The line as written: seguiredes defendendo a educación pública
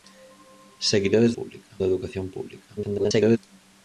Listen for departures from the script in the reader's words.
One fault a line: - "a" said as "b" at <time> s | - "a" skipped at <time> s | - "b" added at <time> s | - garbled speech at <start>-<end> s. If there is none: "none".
- "defendendo" said as "pública" at 1.4 s
- garbled speech at 2.8-3.4 s